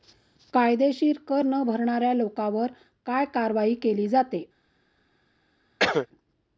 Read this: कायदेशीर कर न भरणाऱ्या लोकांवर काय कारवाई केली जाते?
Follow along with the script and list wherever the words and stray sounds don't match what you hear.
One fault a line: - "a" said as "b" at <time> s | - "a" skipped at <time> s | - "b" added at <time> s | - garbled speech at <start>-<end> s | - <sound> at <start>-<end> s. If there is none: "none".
- cough at 5.8-6.1 s